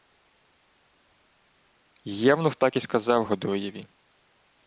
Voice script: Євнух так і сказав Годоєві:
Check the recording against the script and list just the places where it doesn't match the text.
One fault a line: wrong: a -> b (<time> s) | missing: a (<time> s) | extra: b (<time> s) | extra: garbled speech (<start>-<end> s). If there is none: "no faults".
no faults